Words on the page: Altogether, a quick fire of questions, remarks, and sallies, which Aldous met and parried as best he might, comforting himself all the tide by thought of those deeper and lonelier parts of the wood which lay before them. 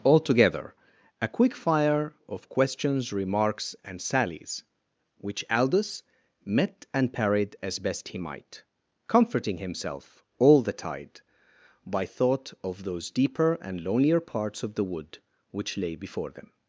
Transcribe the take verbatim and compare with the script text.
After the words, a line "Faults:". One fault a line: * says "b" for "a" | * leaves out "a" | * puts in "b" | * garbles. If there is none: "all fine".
Altogether, a quick fire of questions, remarks, and sallies, which Aldous met and parried as best he might, comforting himself all the tide by thought of those deeper and lonelier parts of the wood which lay before them.
Faults:
all fine